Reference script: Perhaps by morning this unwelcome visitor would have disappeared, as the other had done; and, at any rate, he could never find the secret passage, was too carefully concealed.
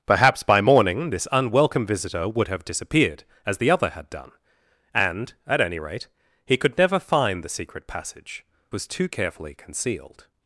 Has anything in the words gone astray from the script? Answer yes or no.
no